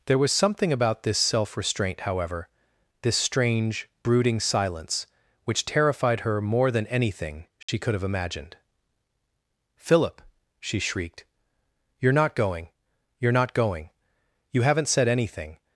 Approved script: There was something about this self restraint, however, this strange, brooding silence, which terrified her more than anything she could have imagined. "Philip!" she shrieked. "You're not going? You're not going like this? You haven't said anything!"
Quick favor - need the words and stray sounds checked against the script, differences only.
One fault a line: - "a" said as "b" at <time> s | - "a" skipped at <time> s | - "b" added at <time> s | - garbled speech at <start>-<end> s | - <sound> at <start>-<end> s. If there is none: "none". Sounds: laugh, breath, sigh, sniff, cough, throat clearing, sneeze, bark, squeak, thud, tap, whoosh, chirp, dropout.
- dropout at 7.6-7.7 s
- "like this" skipped at 13.9 s